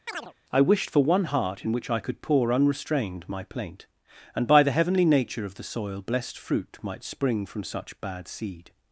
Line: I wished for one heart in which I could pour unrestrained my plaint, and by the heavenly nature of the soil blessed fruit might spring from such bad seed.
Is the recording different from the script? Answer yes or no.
no